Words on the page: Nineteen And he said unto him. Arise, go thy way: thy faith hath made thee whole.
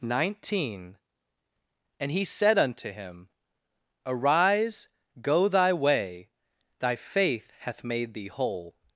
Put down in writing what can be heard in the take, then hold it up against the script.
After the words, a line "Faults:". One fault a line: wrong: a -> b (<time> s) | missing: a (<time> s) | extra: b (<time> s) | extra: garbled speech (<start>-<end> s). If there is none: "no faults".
Nineteen And he said unto him. Arise, go thy way: thy faith hath made thee whole.
Faults:
no faults